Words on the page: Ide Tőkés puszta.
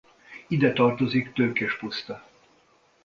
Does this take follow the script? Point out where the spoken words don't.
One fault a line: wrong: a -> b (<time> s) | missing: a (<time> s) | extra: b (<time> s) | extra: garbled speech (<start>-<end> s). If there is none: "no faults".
extra: tartozik (0.7 s)